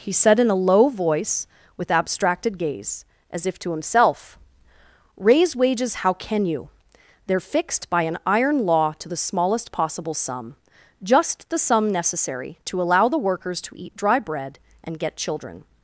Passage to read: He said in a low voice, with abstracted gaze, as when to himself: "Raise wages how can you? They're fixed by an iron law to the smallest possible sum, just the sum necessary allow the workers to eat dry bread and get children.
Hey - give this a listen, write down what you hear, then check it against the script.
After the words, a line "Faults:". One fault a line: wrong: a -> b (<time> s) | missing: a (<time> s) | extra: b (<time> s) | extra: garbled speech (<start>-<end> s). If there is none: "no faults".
He said in a low voice, with abstracted gaze, as if to himself: "Raise wages how can you? They're fixed by an iron law to the smallest possible sum, just the sum necessary to allow the workers to eat dry bread and get children.
Faults:
wrong: when -> if (3.5 s)
extra: to (12.6 s)